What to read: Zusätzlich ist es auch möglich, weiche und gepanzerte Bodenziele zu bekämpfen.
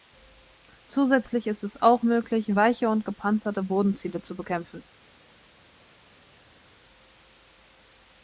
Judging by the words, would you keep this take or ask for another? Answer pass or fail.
pass